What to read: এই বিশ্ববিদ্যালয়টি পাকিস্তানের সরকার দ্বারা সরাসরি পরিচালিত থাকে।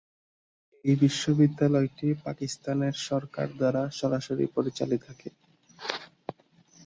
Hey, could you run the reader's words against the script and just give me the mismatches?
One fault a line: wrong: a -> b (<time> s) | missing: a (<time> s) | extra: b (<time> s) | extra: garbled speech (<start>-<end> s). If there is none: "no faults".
no faults